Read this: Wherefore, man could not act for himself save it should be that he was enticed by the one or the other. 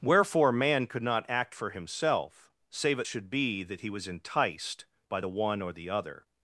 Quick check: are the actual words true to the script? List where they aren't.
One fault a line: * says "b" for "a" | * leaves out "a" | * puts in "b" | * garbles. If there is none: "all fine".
all fine